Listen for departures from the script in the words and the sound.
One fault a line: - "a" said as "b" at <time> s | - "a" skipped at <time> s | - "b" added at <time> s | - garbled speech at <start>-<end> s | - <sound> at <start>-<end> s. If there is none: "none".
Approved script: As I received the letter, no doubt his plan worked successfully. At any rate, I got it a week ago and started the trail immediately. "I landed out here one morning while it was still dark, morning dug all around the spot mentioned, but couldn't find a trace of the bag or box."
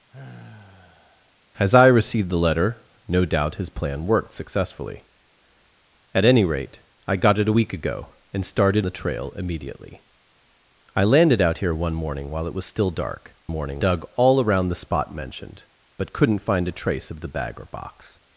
- sigh at 0.1-1.3 s